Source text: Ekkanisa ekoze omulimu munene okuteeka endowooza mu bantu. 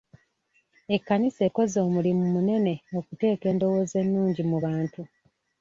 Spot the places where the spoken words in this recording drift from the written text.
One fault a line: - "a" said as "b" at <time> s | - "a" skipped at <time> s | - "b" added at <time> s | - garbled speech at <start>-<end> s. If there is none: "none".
- "ennungi" added at 4.0 s